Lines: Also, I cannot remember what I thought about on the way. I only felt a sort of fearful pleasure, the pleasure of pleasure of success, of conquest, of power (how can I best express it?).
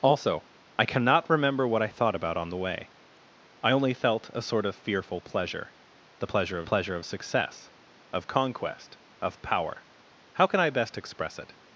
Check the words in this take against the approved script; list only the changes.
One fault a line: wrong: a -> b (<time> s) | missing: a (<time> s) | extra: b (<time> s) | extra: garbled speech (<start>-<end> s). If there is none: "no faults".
no faults